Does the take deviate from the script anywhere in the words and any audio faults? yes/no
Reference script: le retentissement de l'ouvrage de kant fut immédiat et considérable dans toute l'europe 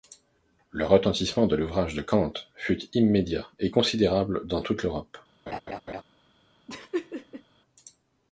yes